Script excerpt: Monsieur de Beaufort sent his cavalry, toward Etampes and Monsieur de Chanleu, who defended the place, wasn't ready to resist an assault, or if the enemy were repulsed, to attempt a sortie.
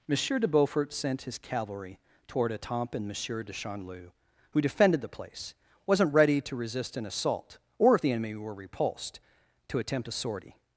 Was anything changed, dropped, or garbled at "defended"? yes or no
no